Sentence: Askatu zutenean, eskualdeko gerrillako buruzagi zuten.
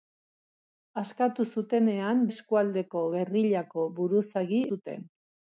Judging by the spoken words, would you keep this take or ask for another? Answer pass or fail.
pass